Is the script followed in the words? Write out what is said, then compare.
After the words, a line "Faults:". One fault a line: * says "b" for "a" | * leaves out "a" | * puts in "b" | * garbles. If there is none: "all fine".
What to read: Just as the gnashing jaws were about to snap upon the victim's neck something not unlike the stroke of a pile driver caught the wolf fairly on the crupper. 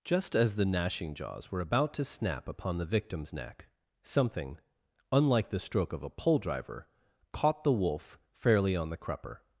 Just as the gnashing jaws were about to snap upon the victim's neck something unlike the stroke of a pole driver caught the wolf fairly on the crupper.
Faults:
* leaves out "not"
* says "pole" for "pile"